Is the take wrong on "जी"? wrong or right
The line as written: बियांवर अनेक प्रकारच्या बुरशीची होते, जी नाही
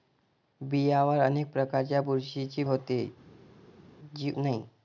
right